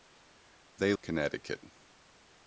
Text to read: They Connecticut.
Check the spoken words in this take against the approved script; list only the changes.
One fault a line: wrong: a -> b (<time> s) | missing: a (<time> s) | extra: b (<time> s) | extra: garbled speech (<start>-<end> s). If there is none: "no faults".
no faults